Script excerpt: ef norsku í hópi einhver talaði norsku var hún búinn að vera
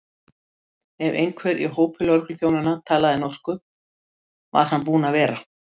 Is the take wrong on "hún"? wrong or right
wrong